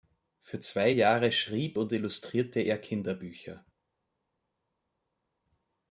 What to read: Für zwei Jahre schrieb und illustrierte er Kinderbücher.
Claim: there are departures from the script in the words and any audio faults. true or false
false